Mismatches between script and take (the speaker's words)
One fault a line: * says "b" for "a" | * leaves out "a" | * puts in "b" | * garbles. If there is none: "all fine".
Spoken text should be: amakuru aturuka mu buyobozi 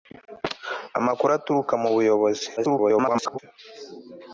* garbles